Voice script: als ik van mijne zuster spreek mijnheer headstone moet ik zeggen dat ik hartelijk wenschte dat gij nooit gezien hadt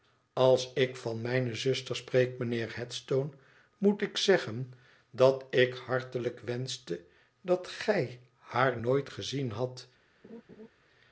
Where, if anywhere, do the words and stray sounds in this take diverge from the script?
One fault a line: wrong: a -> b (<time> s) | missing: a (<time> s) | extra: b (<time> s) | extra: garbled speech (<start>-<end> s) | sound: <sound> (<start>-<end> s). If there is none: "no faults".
extra: haar (8.4 s)
sound: laugh (10.2-10.7 s)